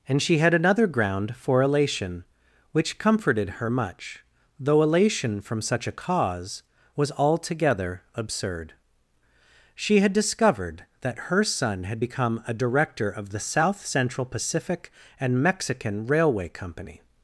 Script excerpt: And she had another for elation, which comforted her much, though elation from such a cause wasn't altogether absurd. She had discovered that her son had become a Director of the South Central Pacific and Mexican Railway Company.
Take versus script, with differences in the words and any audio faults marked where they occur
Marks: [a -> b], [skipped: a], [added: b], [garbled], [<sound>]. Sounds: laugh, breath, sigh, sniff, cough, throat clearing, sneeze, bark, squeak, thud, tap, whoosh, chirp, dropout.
And she had another [added: ground] for elation, which comforted her much, though elation from such a cause [wasn't -> was] altogether absurd. She had discovered that her son had become a Director of the South Central Pacific and Mexican Railway Company.